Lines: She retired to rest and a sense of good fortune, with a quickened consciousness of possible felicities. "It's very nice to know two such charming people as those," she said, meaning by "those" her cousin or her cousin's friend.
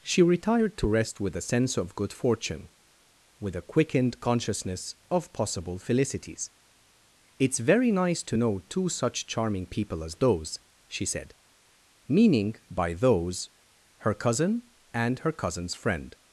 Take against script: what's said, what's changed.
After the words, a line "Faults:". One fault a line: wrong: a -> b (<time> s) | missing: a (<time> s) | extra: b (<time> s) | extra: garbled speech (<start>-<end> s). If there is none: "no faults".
She retired to rest with a sense of good fortune, with a quickened consciousness of possible felicities. "It's very nice to know two such charming people as those," she said, meaning by "those" her cousin and her cousin's friend.
Faults:
wrong: and -> with (1.2 s)
wrong: or -> and (14.9 s)